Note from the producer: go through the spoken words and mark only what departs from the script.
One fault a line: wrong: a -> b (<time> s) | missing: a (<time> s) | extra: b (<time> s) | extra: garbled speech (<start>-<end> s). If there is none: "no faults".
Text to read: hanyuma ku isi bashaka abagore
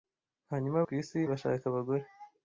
no faults